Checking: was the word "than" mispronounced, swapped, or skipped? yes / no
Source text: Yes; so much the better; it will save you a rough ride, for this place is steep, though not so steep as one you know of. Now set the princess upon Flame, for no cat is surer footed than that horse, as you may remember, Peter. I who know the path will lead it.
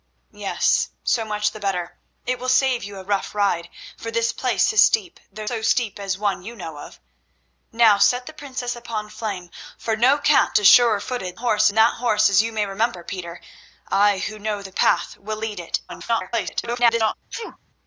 yes